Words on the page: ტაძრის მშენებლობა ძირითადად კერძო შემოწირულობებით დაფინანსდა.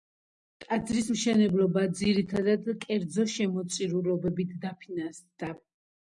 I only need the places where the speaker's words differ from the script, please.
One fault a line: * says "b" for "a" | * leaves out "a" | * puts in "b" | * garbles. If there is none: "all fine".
all fine